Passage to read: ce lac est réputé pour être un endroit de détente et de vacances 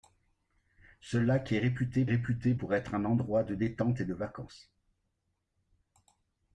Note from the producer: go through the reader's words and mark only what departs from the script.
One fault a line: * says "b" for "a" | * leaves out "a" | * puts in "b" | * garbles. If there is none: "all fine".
* puts in "réputé"